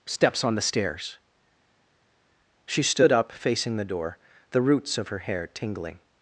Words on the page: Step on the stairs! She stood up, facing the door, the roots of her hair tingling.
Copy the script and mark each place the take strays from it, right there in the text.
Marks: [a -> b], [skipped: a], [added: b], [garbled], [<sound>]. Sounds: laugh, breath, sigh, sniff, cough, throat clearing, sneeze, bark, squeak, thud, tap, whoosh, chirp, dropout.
[Step -> Steps] on the stairs! She stood up, facing the door, the roots of her hair tingling.